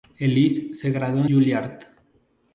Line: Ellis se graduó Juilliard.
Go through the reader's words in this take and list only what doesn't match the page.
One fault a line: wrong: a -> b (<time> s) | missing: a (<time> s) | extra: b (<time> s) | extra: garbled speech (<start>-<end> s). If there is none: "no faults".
no faults